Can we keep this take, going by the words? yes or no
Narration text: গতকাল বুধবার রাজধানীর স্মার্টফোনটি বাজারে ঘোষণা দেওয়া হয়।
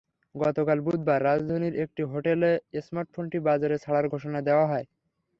no